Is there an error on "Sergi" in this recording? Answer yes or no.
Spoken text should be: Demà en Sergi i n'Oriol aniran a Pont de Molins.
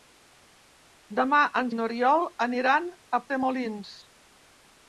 yes